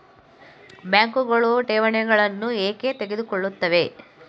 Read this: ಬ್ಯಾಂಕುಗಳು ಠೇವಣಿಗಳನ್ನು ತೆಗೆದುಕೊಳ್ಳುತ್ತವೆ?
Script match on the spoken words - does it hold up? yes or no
no